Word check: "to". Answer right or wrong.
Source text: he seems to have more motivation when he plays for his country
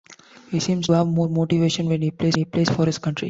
wrong